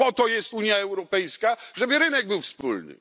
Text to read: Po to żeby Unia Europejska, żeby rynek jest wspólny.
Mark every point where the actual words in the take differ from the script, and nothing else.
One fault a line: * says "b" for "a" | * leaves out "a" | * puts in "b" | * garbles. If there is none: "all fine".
* says "jest" for "żeby"
* says "był" for "jest"